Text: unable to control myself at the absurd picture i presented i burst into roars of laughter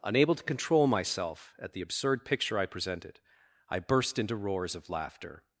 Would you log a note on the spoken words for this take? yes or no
no